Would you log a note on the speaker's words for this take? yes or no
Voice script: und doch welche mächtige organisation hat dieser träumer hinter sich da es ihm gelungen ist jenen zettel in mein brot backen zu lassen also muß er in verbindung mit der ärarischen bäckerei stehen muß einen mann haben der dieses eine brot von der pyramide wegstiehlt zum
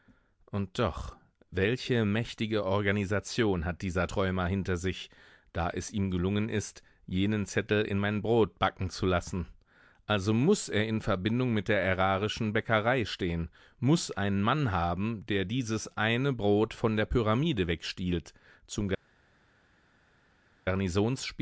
no